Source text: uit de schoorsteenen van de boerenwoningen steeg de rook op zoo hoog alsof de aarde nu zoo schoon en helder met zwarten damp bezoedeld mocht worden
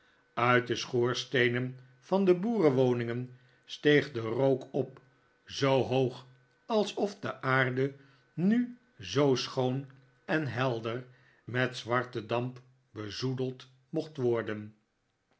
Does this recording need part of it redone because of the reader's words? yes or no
no